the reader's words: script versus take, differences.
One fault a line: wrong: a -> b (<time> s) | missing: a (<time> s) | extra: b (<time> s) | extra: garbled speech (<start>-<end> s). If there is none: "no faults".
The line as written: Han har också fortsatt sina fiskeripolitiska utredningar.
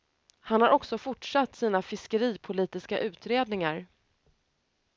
no faults